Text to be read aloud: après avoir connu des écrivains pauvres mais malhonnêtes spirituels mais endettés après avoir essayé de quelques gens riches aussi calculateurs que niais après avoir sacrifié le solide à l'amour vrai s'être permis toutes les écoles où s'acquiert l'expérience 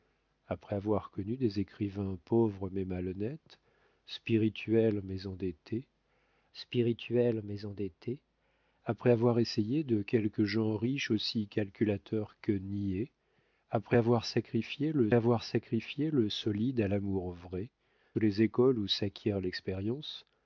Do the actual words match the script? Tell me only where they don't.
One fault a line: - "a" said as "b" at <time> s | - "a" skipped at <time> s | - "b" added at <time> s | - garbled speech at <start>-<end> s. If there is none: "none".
- "spirituels mais endettés" added at 6.5 s
- "avoir sacrifié le" added at 15.1 s
- "s'être permis toutes" skipped at 17.7 s